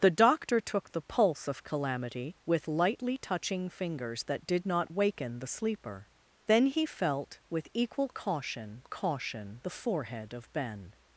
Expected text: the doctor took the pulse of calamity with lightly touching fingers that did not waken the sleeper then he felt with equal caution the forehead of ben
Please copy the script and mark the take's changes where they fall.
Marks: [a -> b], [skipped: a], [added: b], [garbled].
the doctor took the pulse of calamity with lightly touching fingers that did not waken the sleeper then he felt with equal caution [added: caution] the forehead of ben